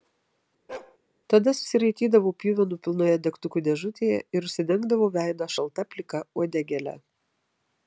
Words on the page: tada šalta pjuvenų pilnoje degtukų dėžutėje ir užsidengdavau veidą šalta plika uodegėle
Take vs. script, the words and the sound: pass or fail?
fail